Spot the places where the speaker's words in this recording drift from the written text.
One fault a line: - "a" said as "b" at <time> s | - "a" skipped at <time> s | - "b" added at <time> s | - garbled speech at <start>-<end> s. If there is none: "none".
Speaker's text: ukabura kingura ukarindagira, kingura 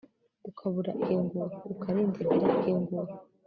none